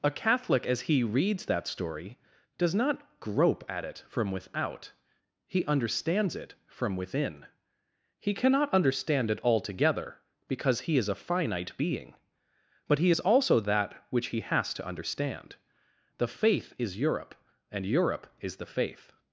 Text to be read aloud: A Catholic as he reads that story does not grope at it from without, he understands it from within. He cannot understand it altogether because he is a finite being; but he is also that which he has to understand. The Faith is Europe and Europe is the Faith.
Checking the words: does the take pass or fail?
pass